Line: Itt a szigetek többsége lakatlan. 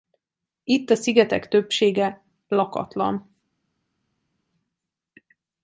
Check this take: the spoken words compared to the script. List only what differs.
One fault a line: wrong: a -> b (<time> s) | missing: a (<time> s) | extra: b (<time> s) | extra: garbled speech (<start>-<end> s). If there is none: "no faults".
no faults